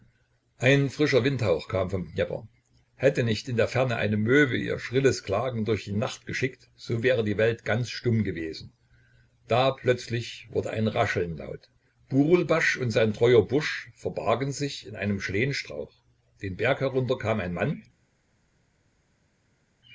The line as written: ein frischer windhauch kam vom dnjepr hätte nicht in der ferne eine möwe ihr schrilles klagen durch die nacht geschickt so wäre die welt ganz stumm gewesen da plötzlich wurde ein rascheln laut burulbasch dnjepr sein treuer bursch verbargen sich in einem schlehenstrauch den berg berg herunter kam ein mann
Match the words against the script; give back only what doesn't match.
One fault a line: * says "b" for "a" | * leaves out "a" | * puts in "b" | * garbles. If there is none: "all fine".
* says "und" for "dnjepr"
* leaves out "berg"